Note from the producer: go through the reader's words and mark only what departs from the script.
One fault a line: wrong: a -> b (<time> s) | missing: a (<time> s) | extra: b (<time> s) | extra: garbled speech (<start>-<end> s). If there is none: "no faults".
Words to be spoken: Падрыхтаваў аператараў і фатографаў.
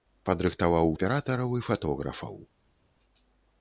no faults